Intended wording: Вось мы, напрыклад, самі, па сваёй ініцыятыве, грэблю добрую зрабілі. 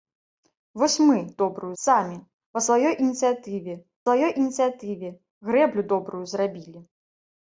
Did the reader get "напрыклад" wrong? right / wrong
wrong